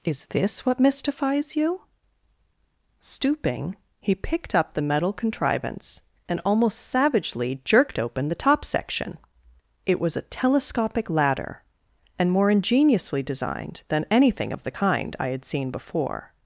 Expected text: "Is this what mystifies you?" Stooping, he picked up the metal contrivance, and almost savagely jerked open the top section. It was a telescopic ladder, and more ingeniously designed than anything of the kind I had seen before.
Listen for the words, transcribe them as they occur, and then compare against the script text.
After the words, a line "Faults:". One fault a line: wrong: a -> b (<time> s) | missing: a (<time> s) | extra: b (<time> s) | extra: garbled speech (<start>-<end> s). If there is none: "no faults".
"Is this what mystifies you?" Stooping, he picked up the metal contrivance, and almost savagely jerked open the top section. It was a telescopic ladder, and more ingeniously designed than anything of the kind I had seen before.
Faults:
no faults